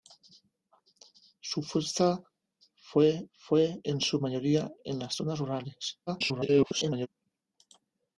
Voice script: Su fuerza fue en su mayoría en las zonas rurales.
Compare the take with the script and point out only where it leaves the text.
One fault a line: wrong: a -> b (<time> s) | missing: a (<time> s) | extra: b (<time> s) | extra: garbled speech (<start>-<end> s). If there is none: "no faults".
extra: fue (3.3 s)
extra: garbled speech (6.1-7.1 s)